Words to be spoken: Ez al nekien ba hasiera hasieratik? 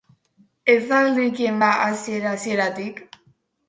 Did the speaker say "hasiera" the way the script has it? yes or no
yes